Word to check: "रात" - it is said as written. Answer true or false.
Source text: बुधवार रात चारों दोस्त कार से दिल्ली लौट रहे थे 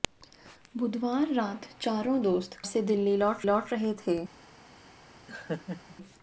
true